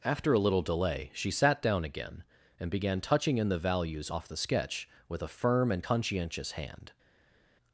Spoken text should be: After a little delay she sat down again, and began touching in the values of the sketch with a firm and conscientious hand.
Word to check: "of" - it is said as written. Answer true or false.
false